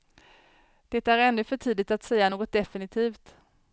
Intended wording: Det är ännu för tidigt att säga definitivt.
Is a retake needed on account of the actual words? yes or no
yes